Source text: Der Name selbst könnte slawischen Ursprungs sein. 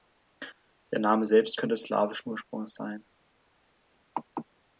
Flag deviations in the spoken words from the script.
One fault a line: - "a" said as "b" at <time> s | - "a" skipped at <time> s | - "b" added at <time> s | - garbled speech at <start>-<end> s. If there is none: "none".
none